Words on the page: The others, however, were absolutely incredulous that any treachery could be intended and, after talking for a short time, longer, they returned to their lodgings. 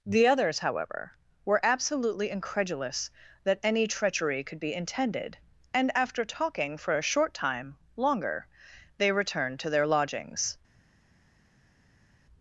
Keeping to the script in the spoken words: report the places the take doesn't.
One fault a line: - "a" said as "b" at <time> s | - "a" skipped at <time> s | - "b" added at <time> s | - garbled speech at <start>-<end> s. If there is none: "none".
none